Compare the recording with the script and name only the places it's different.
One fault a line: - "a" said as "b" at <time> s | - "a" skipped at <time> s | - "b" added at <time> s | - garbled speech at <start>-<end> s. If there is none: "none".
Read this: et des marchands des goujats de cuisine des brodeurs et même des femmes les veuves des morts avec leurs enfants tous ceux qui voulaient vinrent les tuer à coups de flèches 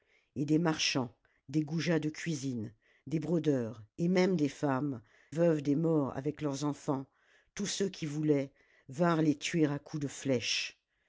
- "les" skipped at 5.0 s